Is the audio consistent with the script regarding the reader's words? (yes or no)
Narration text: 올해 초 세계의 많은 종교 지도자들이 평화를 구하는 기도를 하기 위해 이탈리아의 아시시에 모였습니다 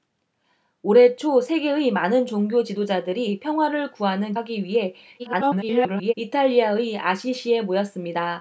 no